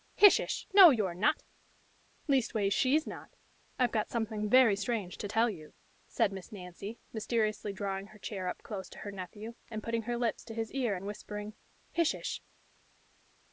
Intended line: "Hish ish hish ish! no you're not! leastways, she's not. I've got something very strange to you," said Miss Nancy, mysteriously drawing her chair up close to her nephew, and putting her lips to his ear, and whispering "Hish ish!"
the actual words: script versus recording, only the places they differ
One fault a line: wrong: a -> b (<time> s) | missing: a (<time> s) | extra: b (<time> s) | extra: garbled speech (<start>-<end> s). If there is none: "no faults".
missing: hish ish (0.7 s)
extra: tell (5.3 s)